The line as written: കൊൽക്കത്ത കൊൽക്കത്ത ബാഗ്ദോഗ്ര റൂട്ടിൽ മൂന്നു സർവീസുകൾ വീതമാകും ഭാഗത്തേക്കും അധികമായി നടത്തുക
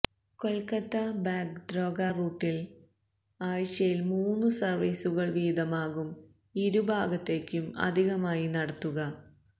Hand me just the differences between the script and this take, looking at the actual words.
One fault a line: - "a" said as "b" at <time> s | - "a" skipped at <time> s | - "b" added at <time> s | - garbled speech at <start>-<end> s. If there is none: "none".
- "കൊൽക്കത്ത" skipped at 0.9 s
- "ആഴ്ചയിൽ" added at 3.4 s
- "ഇരു" added at 6.6 s